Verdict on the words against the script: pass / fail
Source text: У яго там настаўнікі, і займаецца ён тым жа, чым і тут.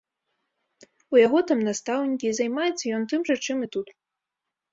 pass